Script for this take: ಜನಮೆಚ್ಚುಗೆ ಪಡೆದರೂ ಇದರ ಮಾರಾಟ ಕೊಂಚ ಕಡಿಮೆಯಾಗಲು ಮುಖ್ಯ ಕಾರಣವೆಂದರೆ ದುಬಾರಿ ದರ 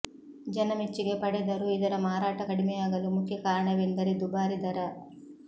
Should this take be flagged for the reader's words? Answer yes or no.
yes